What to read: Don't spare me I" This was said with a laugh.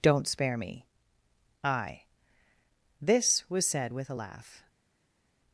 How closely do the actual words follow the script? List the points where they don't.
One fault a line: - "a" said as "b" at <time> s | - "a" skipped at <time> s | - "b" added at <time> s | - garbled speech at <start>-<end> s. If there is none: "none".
none